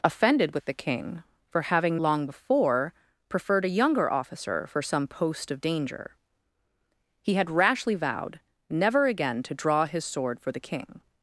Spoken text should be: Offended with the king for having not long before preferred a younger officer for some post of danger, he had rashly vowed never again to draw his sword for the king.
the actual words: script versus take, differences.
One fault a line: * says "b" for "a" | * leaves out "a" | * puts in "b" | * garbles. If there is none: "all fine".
* leaves out "not"